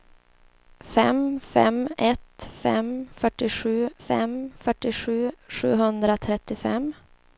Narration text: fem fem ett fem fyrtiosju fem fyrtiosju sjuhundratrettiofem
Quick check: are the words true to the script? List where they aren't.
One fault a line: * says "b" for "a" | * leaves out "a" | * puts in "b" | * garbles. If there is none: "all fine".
all fine